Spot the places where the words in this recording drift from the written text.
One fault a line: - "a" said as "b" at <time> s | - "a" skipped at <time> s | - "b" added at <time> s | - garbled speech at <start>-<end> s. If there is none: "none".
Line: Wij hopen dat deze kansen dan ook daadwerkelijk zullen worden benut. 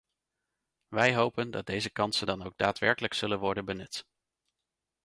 none